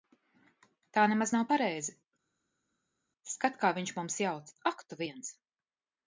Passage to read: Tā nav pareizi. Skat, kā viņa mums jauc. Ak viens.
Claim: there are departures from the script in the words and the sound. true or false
true